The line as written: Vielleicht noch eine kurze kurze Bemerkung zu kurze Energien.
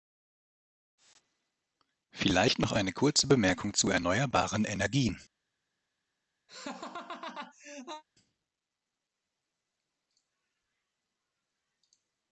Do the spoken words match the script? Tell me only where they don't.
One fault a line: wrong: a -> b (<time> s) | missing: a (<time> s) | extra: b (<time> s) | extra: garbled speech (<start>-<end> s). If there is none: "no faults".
missing: kurze (3.3 s)
wrong: kurze -> erneuerbaren (3.9 s)